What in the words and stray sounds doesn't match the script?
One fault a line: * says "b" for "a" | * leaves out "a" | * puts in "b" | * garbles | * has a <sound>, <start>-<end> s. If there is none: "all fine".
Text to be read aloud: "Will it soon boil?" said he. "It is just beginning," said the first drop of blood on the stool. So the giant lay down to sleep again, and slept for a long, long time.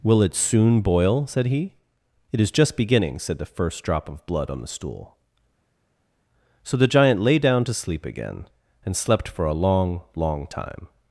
all fine